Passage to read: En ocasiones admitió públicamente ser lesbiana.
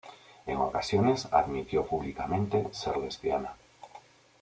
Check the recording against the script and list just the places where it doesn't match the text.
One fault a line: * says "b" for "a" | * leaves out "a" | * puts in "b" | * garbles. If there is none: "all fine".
all fine